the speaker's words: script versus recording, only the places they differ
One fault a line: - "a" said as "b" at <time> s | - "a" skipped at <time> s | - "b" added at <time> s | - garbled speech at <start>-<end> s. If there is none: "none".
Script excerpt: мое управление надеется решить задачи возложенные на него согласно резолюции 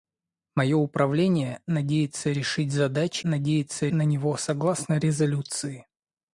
- "возложенные" said as "надеется" at 3.2 s